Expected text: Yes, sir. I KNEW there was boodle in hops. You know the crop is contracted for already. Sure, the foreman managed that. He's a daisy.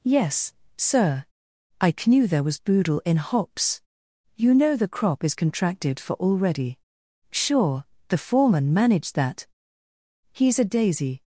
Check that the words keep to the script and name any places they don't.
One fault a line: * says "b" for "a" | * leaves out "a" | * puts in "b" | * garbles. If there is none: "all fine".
all fine